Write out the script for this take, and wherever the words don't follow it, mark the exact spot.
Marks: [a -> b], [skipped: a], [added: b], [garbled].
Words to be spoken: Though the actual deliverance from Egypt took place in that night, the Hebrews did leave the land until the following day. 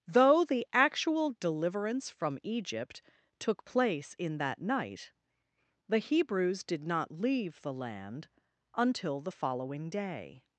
Though the actual deliverance from Egypt took place in that night, the Hebrews did [added: not] leave the land until the following day.